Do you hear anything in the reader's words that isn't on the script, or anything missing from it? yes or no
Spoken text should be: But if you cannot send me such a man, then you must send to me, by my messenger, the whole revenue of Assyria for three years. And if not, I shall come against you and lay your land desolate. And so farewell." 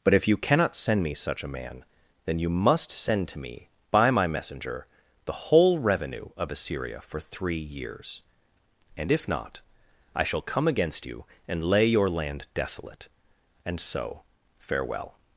no